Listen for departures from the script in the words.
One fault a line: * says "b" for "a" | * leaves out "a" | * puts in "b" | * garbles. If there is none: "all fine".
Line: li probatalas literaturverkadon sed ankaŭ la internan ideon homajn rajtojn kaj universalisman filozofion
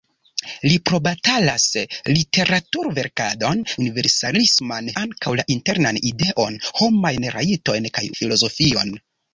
* says "universalisman" for "sed"
* leaves out "universalisman"